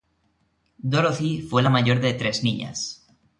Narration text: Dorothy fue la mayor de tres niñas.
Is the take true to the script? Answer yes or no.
yes